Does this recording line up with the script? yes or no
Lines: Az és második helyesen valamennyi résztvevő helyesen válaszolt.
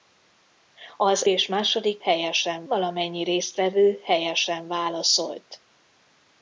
yes